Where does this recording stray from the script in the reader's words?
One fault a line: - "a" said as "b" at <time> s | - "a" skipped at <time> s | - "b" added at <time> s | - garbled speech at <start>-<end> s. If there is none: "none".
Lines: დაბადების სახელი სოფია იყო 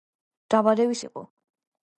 - "სახელი სოფია" skipped at 1.0 s